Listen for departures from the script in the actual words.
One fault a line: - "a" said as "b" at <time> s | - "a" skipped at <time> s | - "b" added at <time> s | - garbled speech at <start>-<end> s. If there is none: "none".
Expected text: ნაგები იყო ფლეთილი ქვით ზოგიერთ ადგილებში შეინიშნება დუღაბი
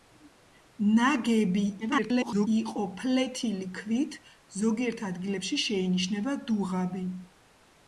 - garbled speech at 1.8-2.5 s